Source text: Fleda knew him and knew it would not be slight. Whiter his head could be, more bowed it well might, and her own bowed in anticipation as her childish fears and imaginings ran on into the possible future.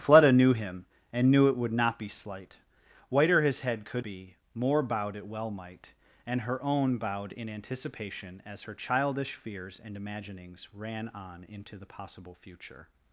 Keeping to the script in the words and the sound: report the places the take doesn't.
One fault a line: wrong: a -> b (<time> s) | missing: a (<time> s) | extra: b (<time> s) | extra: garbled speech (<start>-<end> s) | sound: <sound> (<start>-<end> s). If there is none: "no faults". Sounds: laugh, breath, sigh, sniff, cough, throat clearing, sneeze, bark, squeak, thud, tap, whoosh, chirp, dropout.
no faults